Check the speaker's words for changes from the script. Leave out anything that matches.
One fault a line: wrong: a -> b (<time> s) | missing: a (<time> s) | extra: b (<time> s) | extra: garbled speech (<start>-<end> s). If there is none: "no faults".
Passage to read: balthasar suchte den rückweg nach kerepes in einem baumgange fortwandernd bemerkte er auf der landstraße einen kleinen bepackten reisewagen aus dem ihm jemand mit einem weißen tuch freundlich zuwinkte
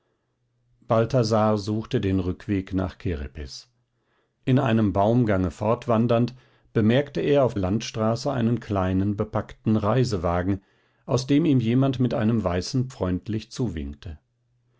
missing: der (7.5 s)
missing: tuch (12.9 s)